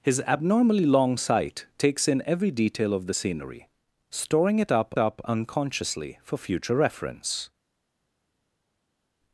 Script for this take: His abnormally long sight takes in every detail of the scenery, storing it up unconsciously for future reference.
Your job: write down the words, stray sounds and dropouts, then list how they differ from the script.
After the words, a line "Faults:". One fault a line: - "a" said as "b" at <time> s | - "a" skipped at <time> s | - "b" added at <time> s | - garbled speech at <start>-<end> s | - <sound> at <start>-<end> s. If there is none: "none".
His abnormally long sight takes in every detail of the scenery, storing it up up unconsciously for future reference.
Faults:
- "up" added at 5.0 s